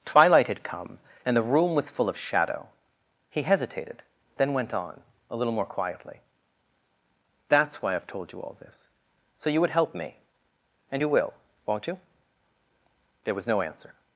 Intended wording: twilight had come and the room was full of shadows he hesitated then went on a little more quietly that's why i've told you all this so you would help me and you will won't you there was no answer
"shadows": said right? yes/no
no